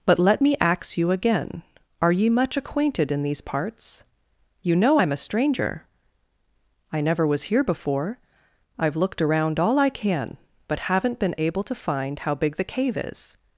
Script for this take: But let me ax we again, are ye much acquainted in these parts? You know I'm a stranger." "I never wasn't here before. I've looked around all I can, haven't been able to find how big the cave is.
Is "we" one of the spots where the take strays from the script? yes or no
yes